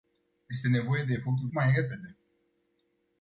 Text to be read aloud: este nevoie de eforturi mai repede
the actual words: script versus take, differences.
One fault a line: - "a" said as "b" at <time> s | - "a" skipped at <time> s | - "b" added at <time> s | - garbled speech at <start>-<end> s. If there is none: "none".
none